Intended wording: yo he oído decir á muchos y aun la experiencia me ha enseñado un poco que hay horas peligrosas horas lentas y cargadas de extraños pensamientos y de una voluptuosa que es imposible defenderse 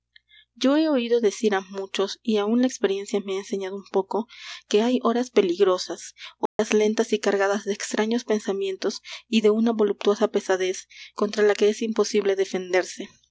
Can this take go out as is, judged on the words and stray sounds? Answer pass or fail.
fail